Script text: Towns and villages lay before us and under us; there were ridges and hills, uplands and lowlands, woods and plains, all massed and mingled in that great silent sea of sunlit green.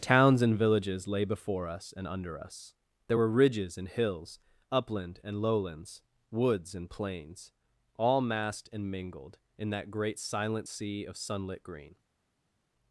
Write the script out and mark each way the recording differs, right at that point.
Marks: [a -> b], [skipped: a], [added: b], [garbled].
Towns and villages lay before us and under us; there were ridges and hills, [uplands -> upland] and lowlands, woods and plains, all massed and mingled in that great silent sea of sunlit green.